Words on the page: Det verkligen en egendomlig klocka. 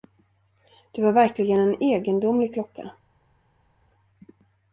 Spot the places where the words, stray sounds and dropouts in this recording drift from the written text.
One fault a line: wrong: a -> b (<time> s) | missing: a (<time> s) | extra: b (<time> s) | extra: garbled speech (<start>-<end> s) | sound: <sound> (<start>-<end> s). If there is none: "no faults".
extra: var (1.0 s)